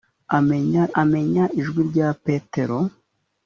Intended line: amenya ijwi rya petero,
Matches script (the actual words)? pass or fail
fail